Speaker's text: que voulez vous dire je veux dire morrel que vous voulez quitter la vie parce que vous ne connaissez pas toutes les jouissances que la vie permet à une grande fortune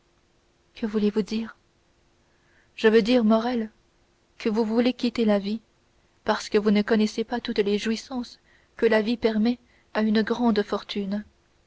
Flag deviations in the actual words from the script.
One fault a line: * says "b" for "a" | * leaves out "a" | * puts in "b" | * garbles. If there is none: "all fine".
all fine